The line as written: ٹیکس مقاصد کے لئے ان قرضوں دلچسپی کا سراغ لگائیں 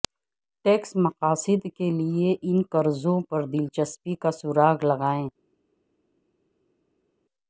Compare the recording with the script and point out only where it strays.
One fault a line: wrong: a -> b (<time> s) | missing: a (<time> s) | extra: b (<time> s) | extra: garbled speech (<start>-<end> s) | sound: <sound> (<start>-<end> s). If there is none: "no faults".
extra: پر (3.3 s)